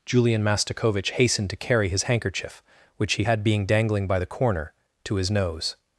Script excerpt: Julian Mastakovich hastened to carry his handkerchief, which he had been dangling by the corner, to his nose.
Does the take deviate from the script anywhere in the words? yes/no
yes